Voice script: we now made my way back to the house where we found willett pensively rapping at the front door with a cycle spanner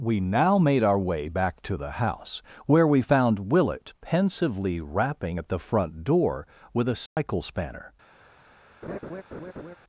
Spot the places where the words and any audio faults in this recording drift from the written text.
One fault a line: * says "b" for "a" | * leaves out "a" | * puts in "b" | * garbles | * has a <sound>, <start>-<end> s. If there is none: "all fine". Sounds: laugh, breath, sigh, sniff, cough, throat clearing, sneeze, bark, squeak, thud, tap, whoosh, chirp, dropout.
* says "our" for "my"
* has a dropout, 7.1-7.2 s
* has a laugh, 8.8-9.8 s